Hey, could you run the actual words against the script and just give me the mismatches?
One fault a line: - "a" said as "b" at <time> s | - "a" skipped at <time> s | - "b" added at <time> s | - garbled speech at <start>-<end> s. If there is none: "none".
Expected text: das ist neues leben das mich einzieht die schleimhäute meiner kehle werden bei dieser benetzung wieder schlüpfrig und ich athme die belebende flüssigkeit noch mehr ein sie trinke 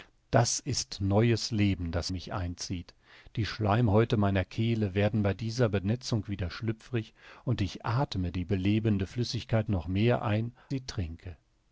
none